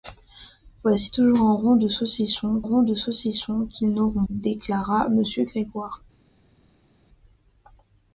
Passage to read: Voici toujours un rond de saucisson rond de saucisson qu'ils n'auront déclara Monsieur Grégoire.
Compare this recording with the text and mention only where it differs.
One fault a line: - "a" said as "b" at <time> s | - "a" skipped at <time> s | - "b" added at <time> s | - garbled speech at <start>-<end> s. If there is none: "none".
none